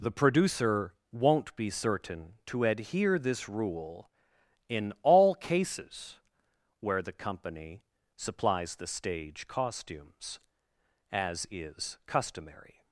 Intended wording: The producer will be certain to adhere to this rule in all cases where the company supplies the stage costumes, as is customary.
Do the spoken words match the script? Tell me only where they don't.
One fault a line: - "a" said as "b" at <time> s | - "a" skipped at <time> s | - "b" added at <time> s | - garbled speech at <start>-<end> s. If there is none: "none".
- "will" said as "won't" at 1.1 s
- "to" skipped at 3.2 s